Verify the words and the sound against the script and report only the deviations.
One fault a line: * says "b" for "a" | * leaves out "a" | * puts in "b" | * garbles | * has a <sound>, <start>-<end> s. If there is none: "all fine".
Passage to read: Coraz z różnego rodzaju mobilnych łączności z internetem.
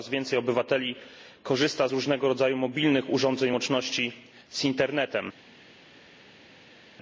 * puts in "więcej obywateli korzysta"
* puts in "urządzeń"